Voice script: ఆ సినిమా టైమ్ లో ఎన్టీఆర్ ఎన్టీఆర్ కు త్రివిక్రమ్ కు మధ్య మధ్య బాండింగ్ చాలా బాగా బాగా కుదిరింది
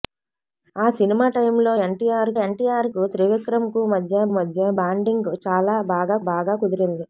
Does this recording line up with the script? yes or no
yes